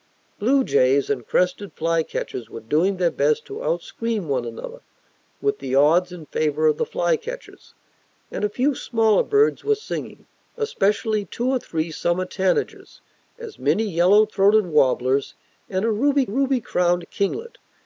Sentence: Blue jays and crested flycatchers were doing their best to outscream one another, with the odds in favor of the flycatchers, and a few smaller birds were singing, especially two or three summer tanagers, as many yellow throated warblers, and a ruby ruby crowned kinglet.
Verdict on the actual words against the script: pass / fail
pass